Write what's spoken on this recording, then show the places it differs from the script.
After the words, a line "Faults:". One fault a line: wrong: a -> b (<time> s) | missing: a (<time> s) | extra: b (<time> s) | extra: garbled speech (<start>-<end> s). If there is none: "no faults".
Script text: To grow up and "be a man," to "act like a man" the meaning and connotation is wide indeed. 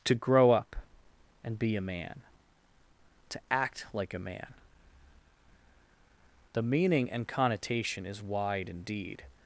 To grow up and "be a man," to "act like a man" the meaning and connotation is wide indeed.
Faults:
no faults